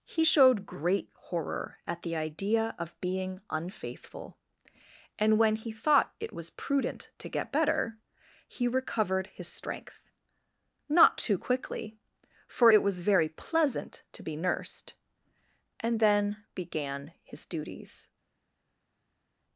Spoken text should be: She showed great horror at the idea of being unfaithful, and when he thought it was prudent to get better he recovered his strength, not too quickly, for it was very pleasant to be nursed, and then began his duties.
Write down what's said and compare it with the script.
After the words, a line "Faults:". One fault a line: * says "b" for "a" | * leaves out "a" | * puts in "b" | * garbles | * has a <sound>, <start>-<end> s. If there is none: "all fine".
He showed great horror at the idea of being unfaithful, and when he thought it was prudent to get better he recovered his strength, not too quickly, for it was very pleasant to be nursed, and then began his duties.
Faults:
* says "He" for "She"